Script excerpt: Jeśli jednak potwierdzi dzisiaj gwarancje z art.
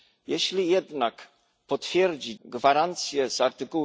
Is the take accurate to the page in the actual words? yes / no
no